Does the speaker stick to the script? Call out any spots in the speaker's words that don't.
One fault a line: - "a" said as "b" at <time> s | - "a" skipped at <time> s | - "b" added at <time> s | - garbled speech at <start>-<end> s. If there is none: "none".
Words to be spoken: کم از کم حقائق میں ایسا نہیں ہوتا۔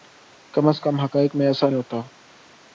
- "نہیں" skipped at 1.7 s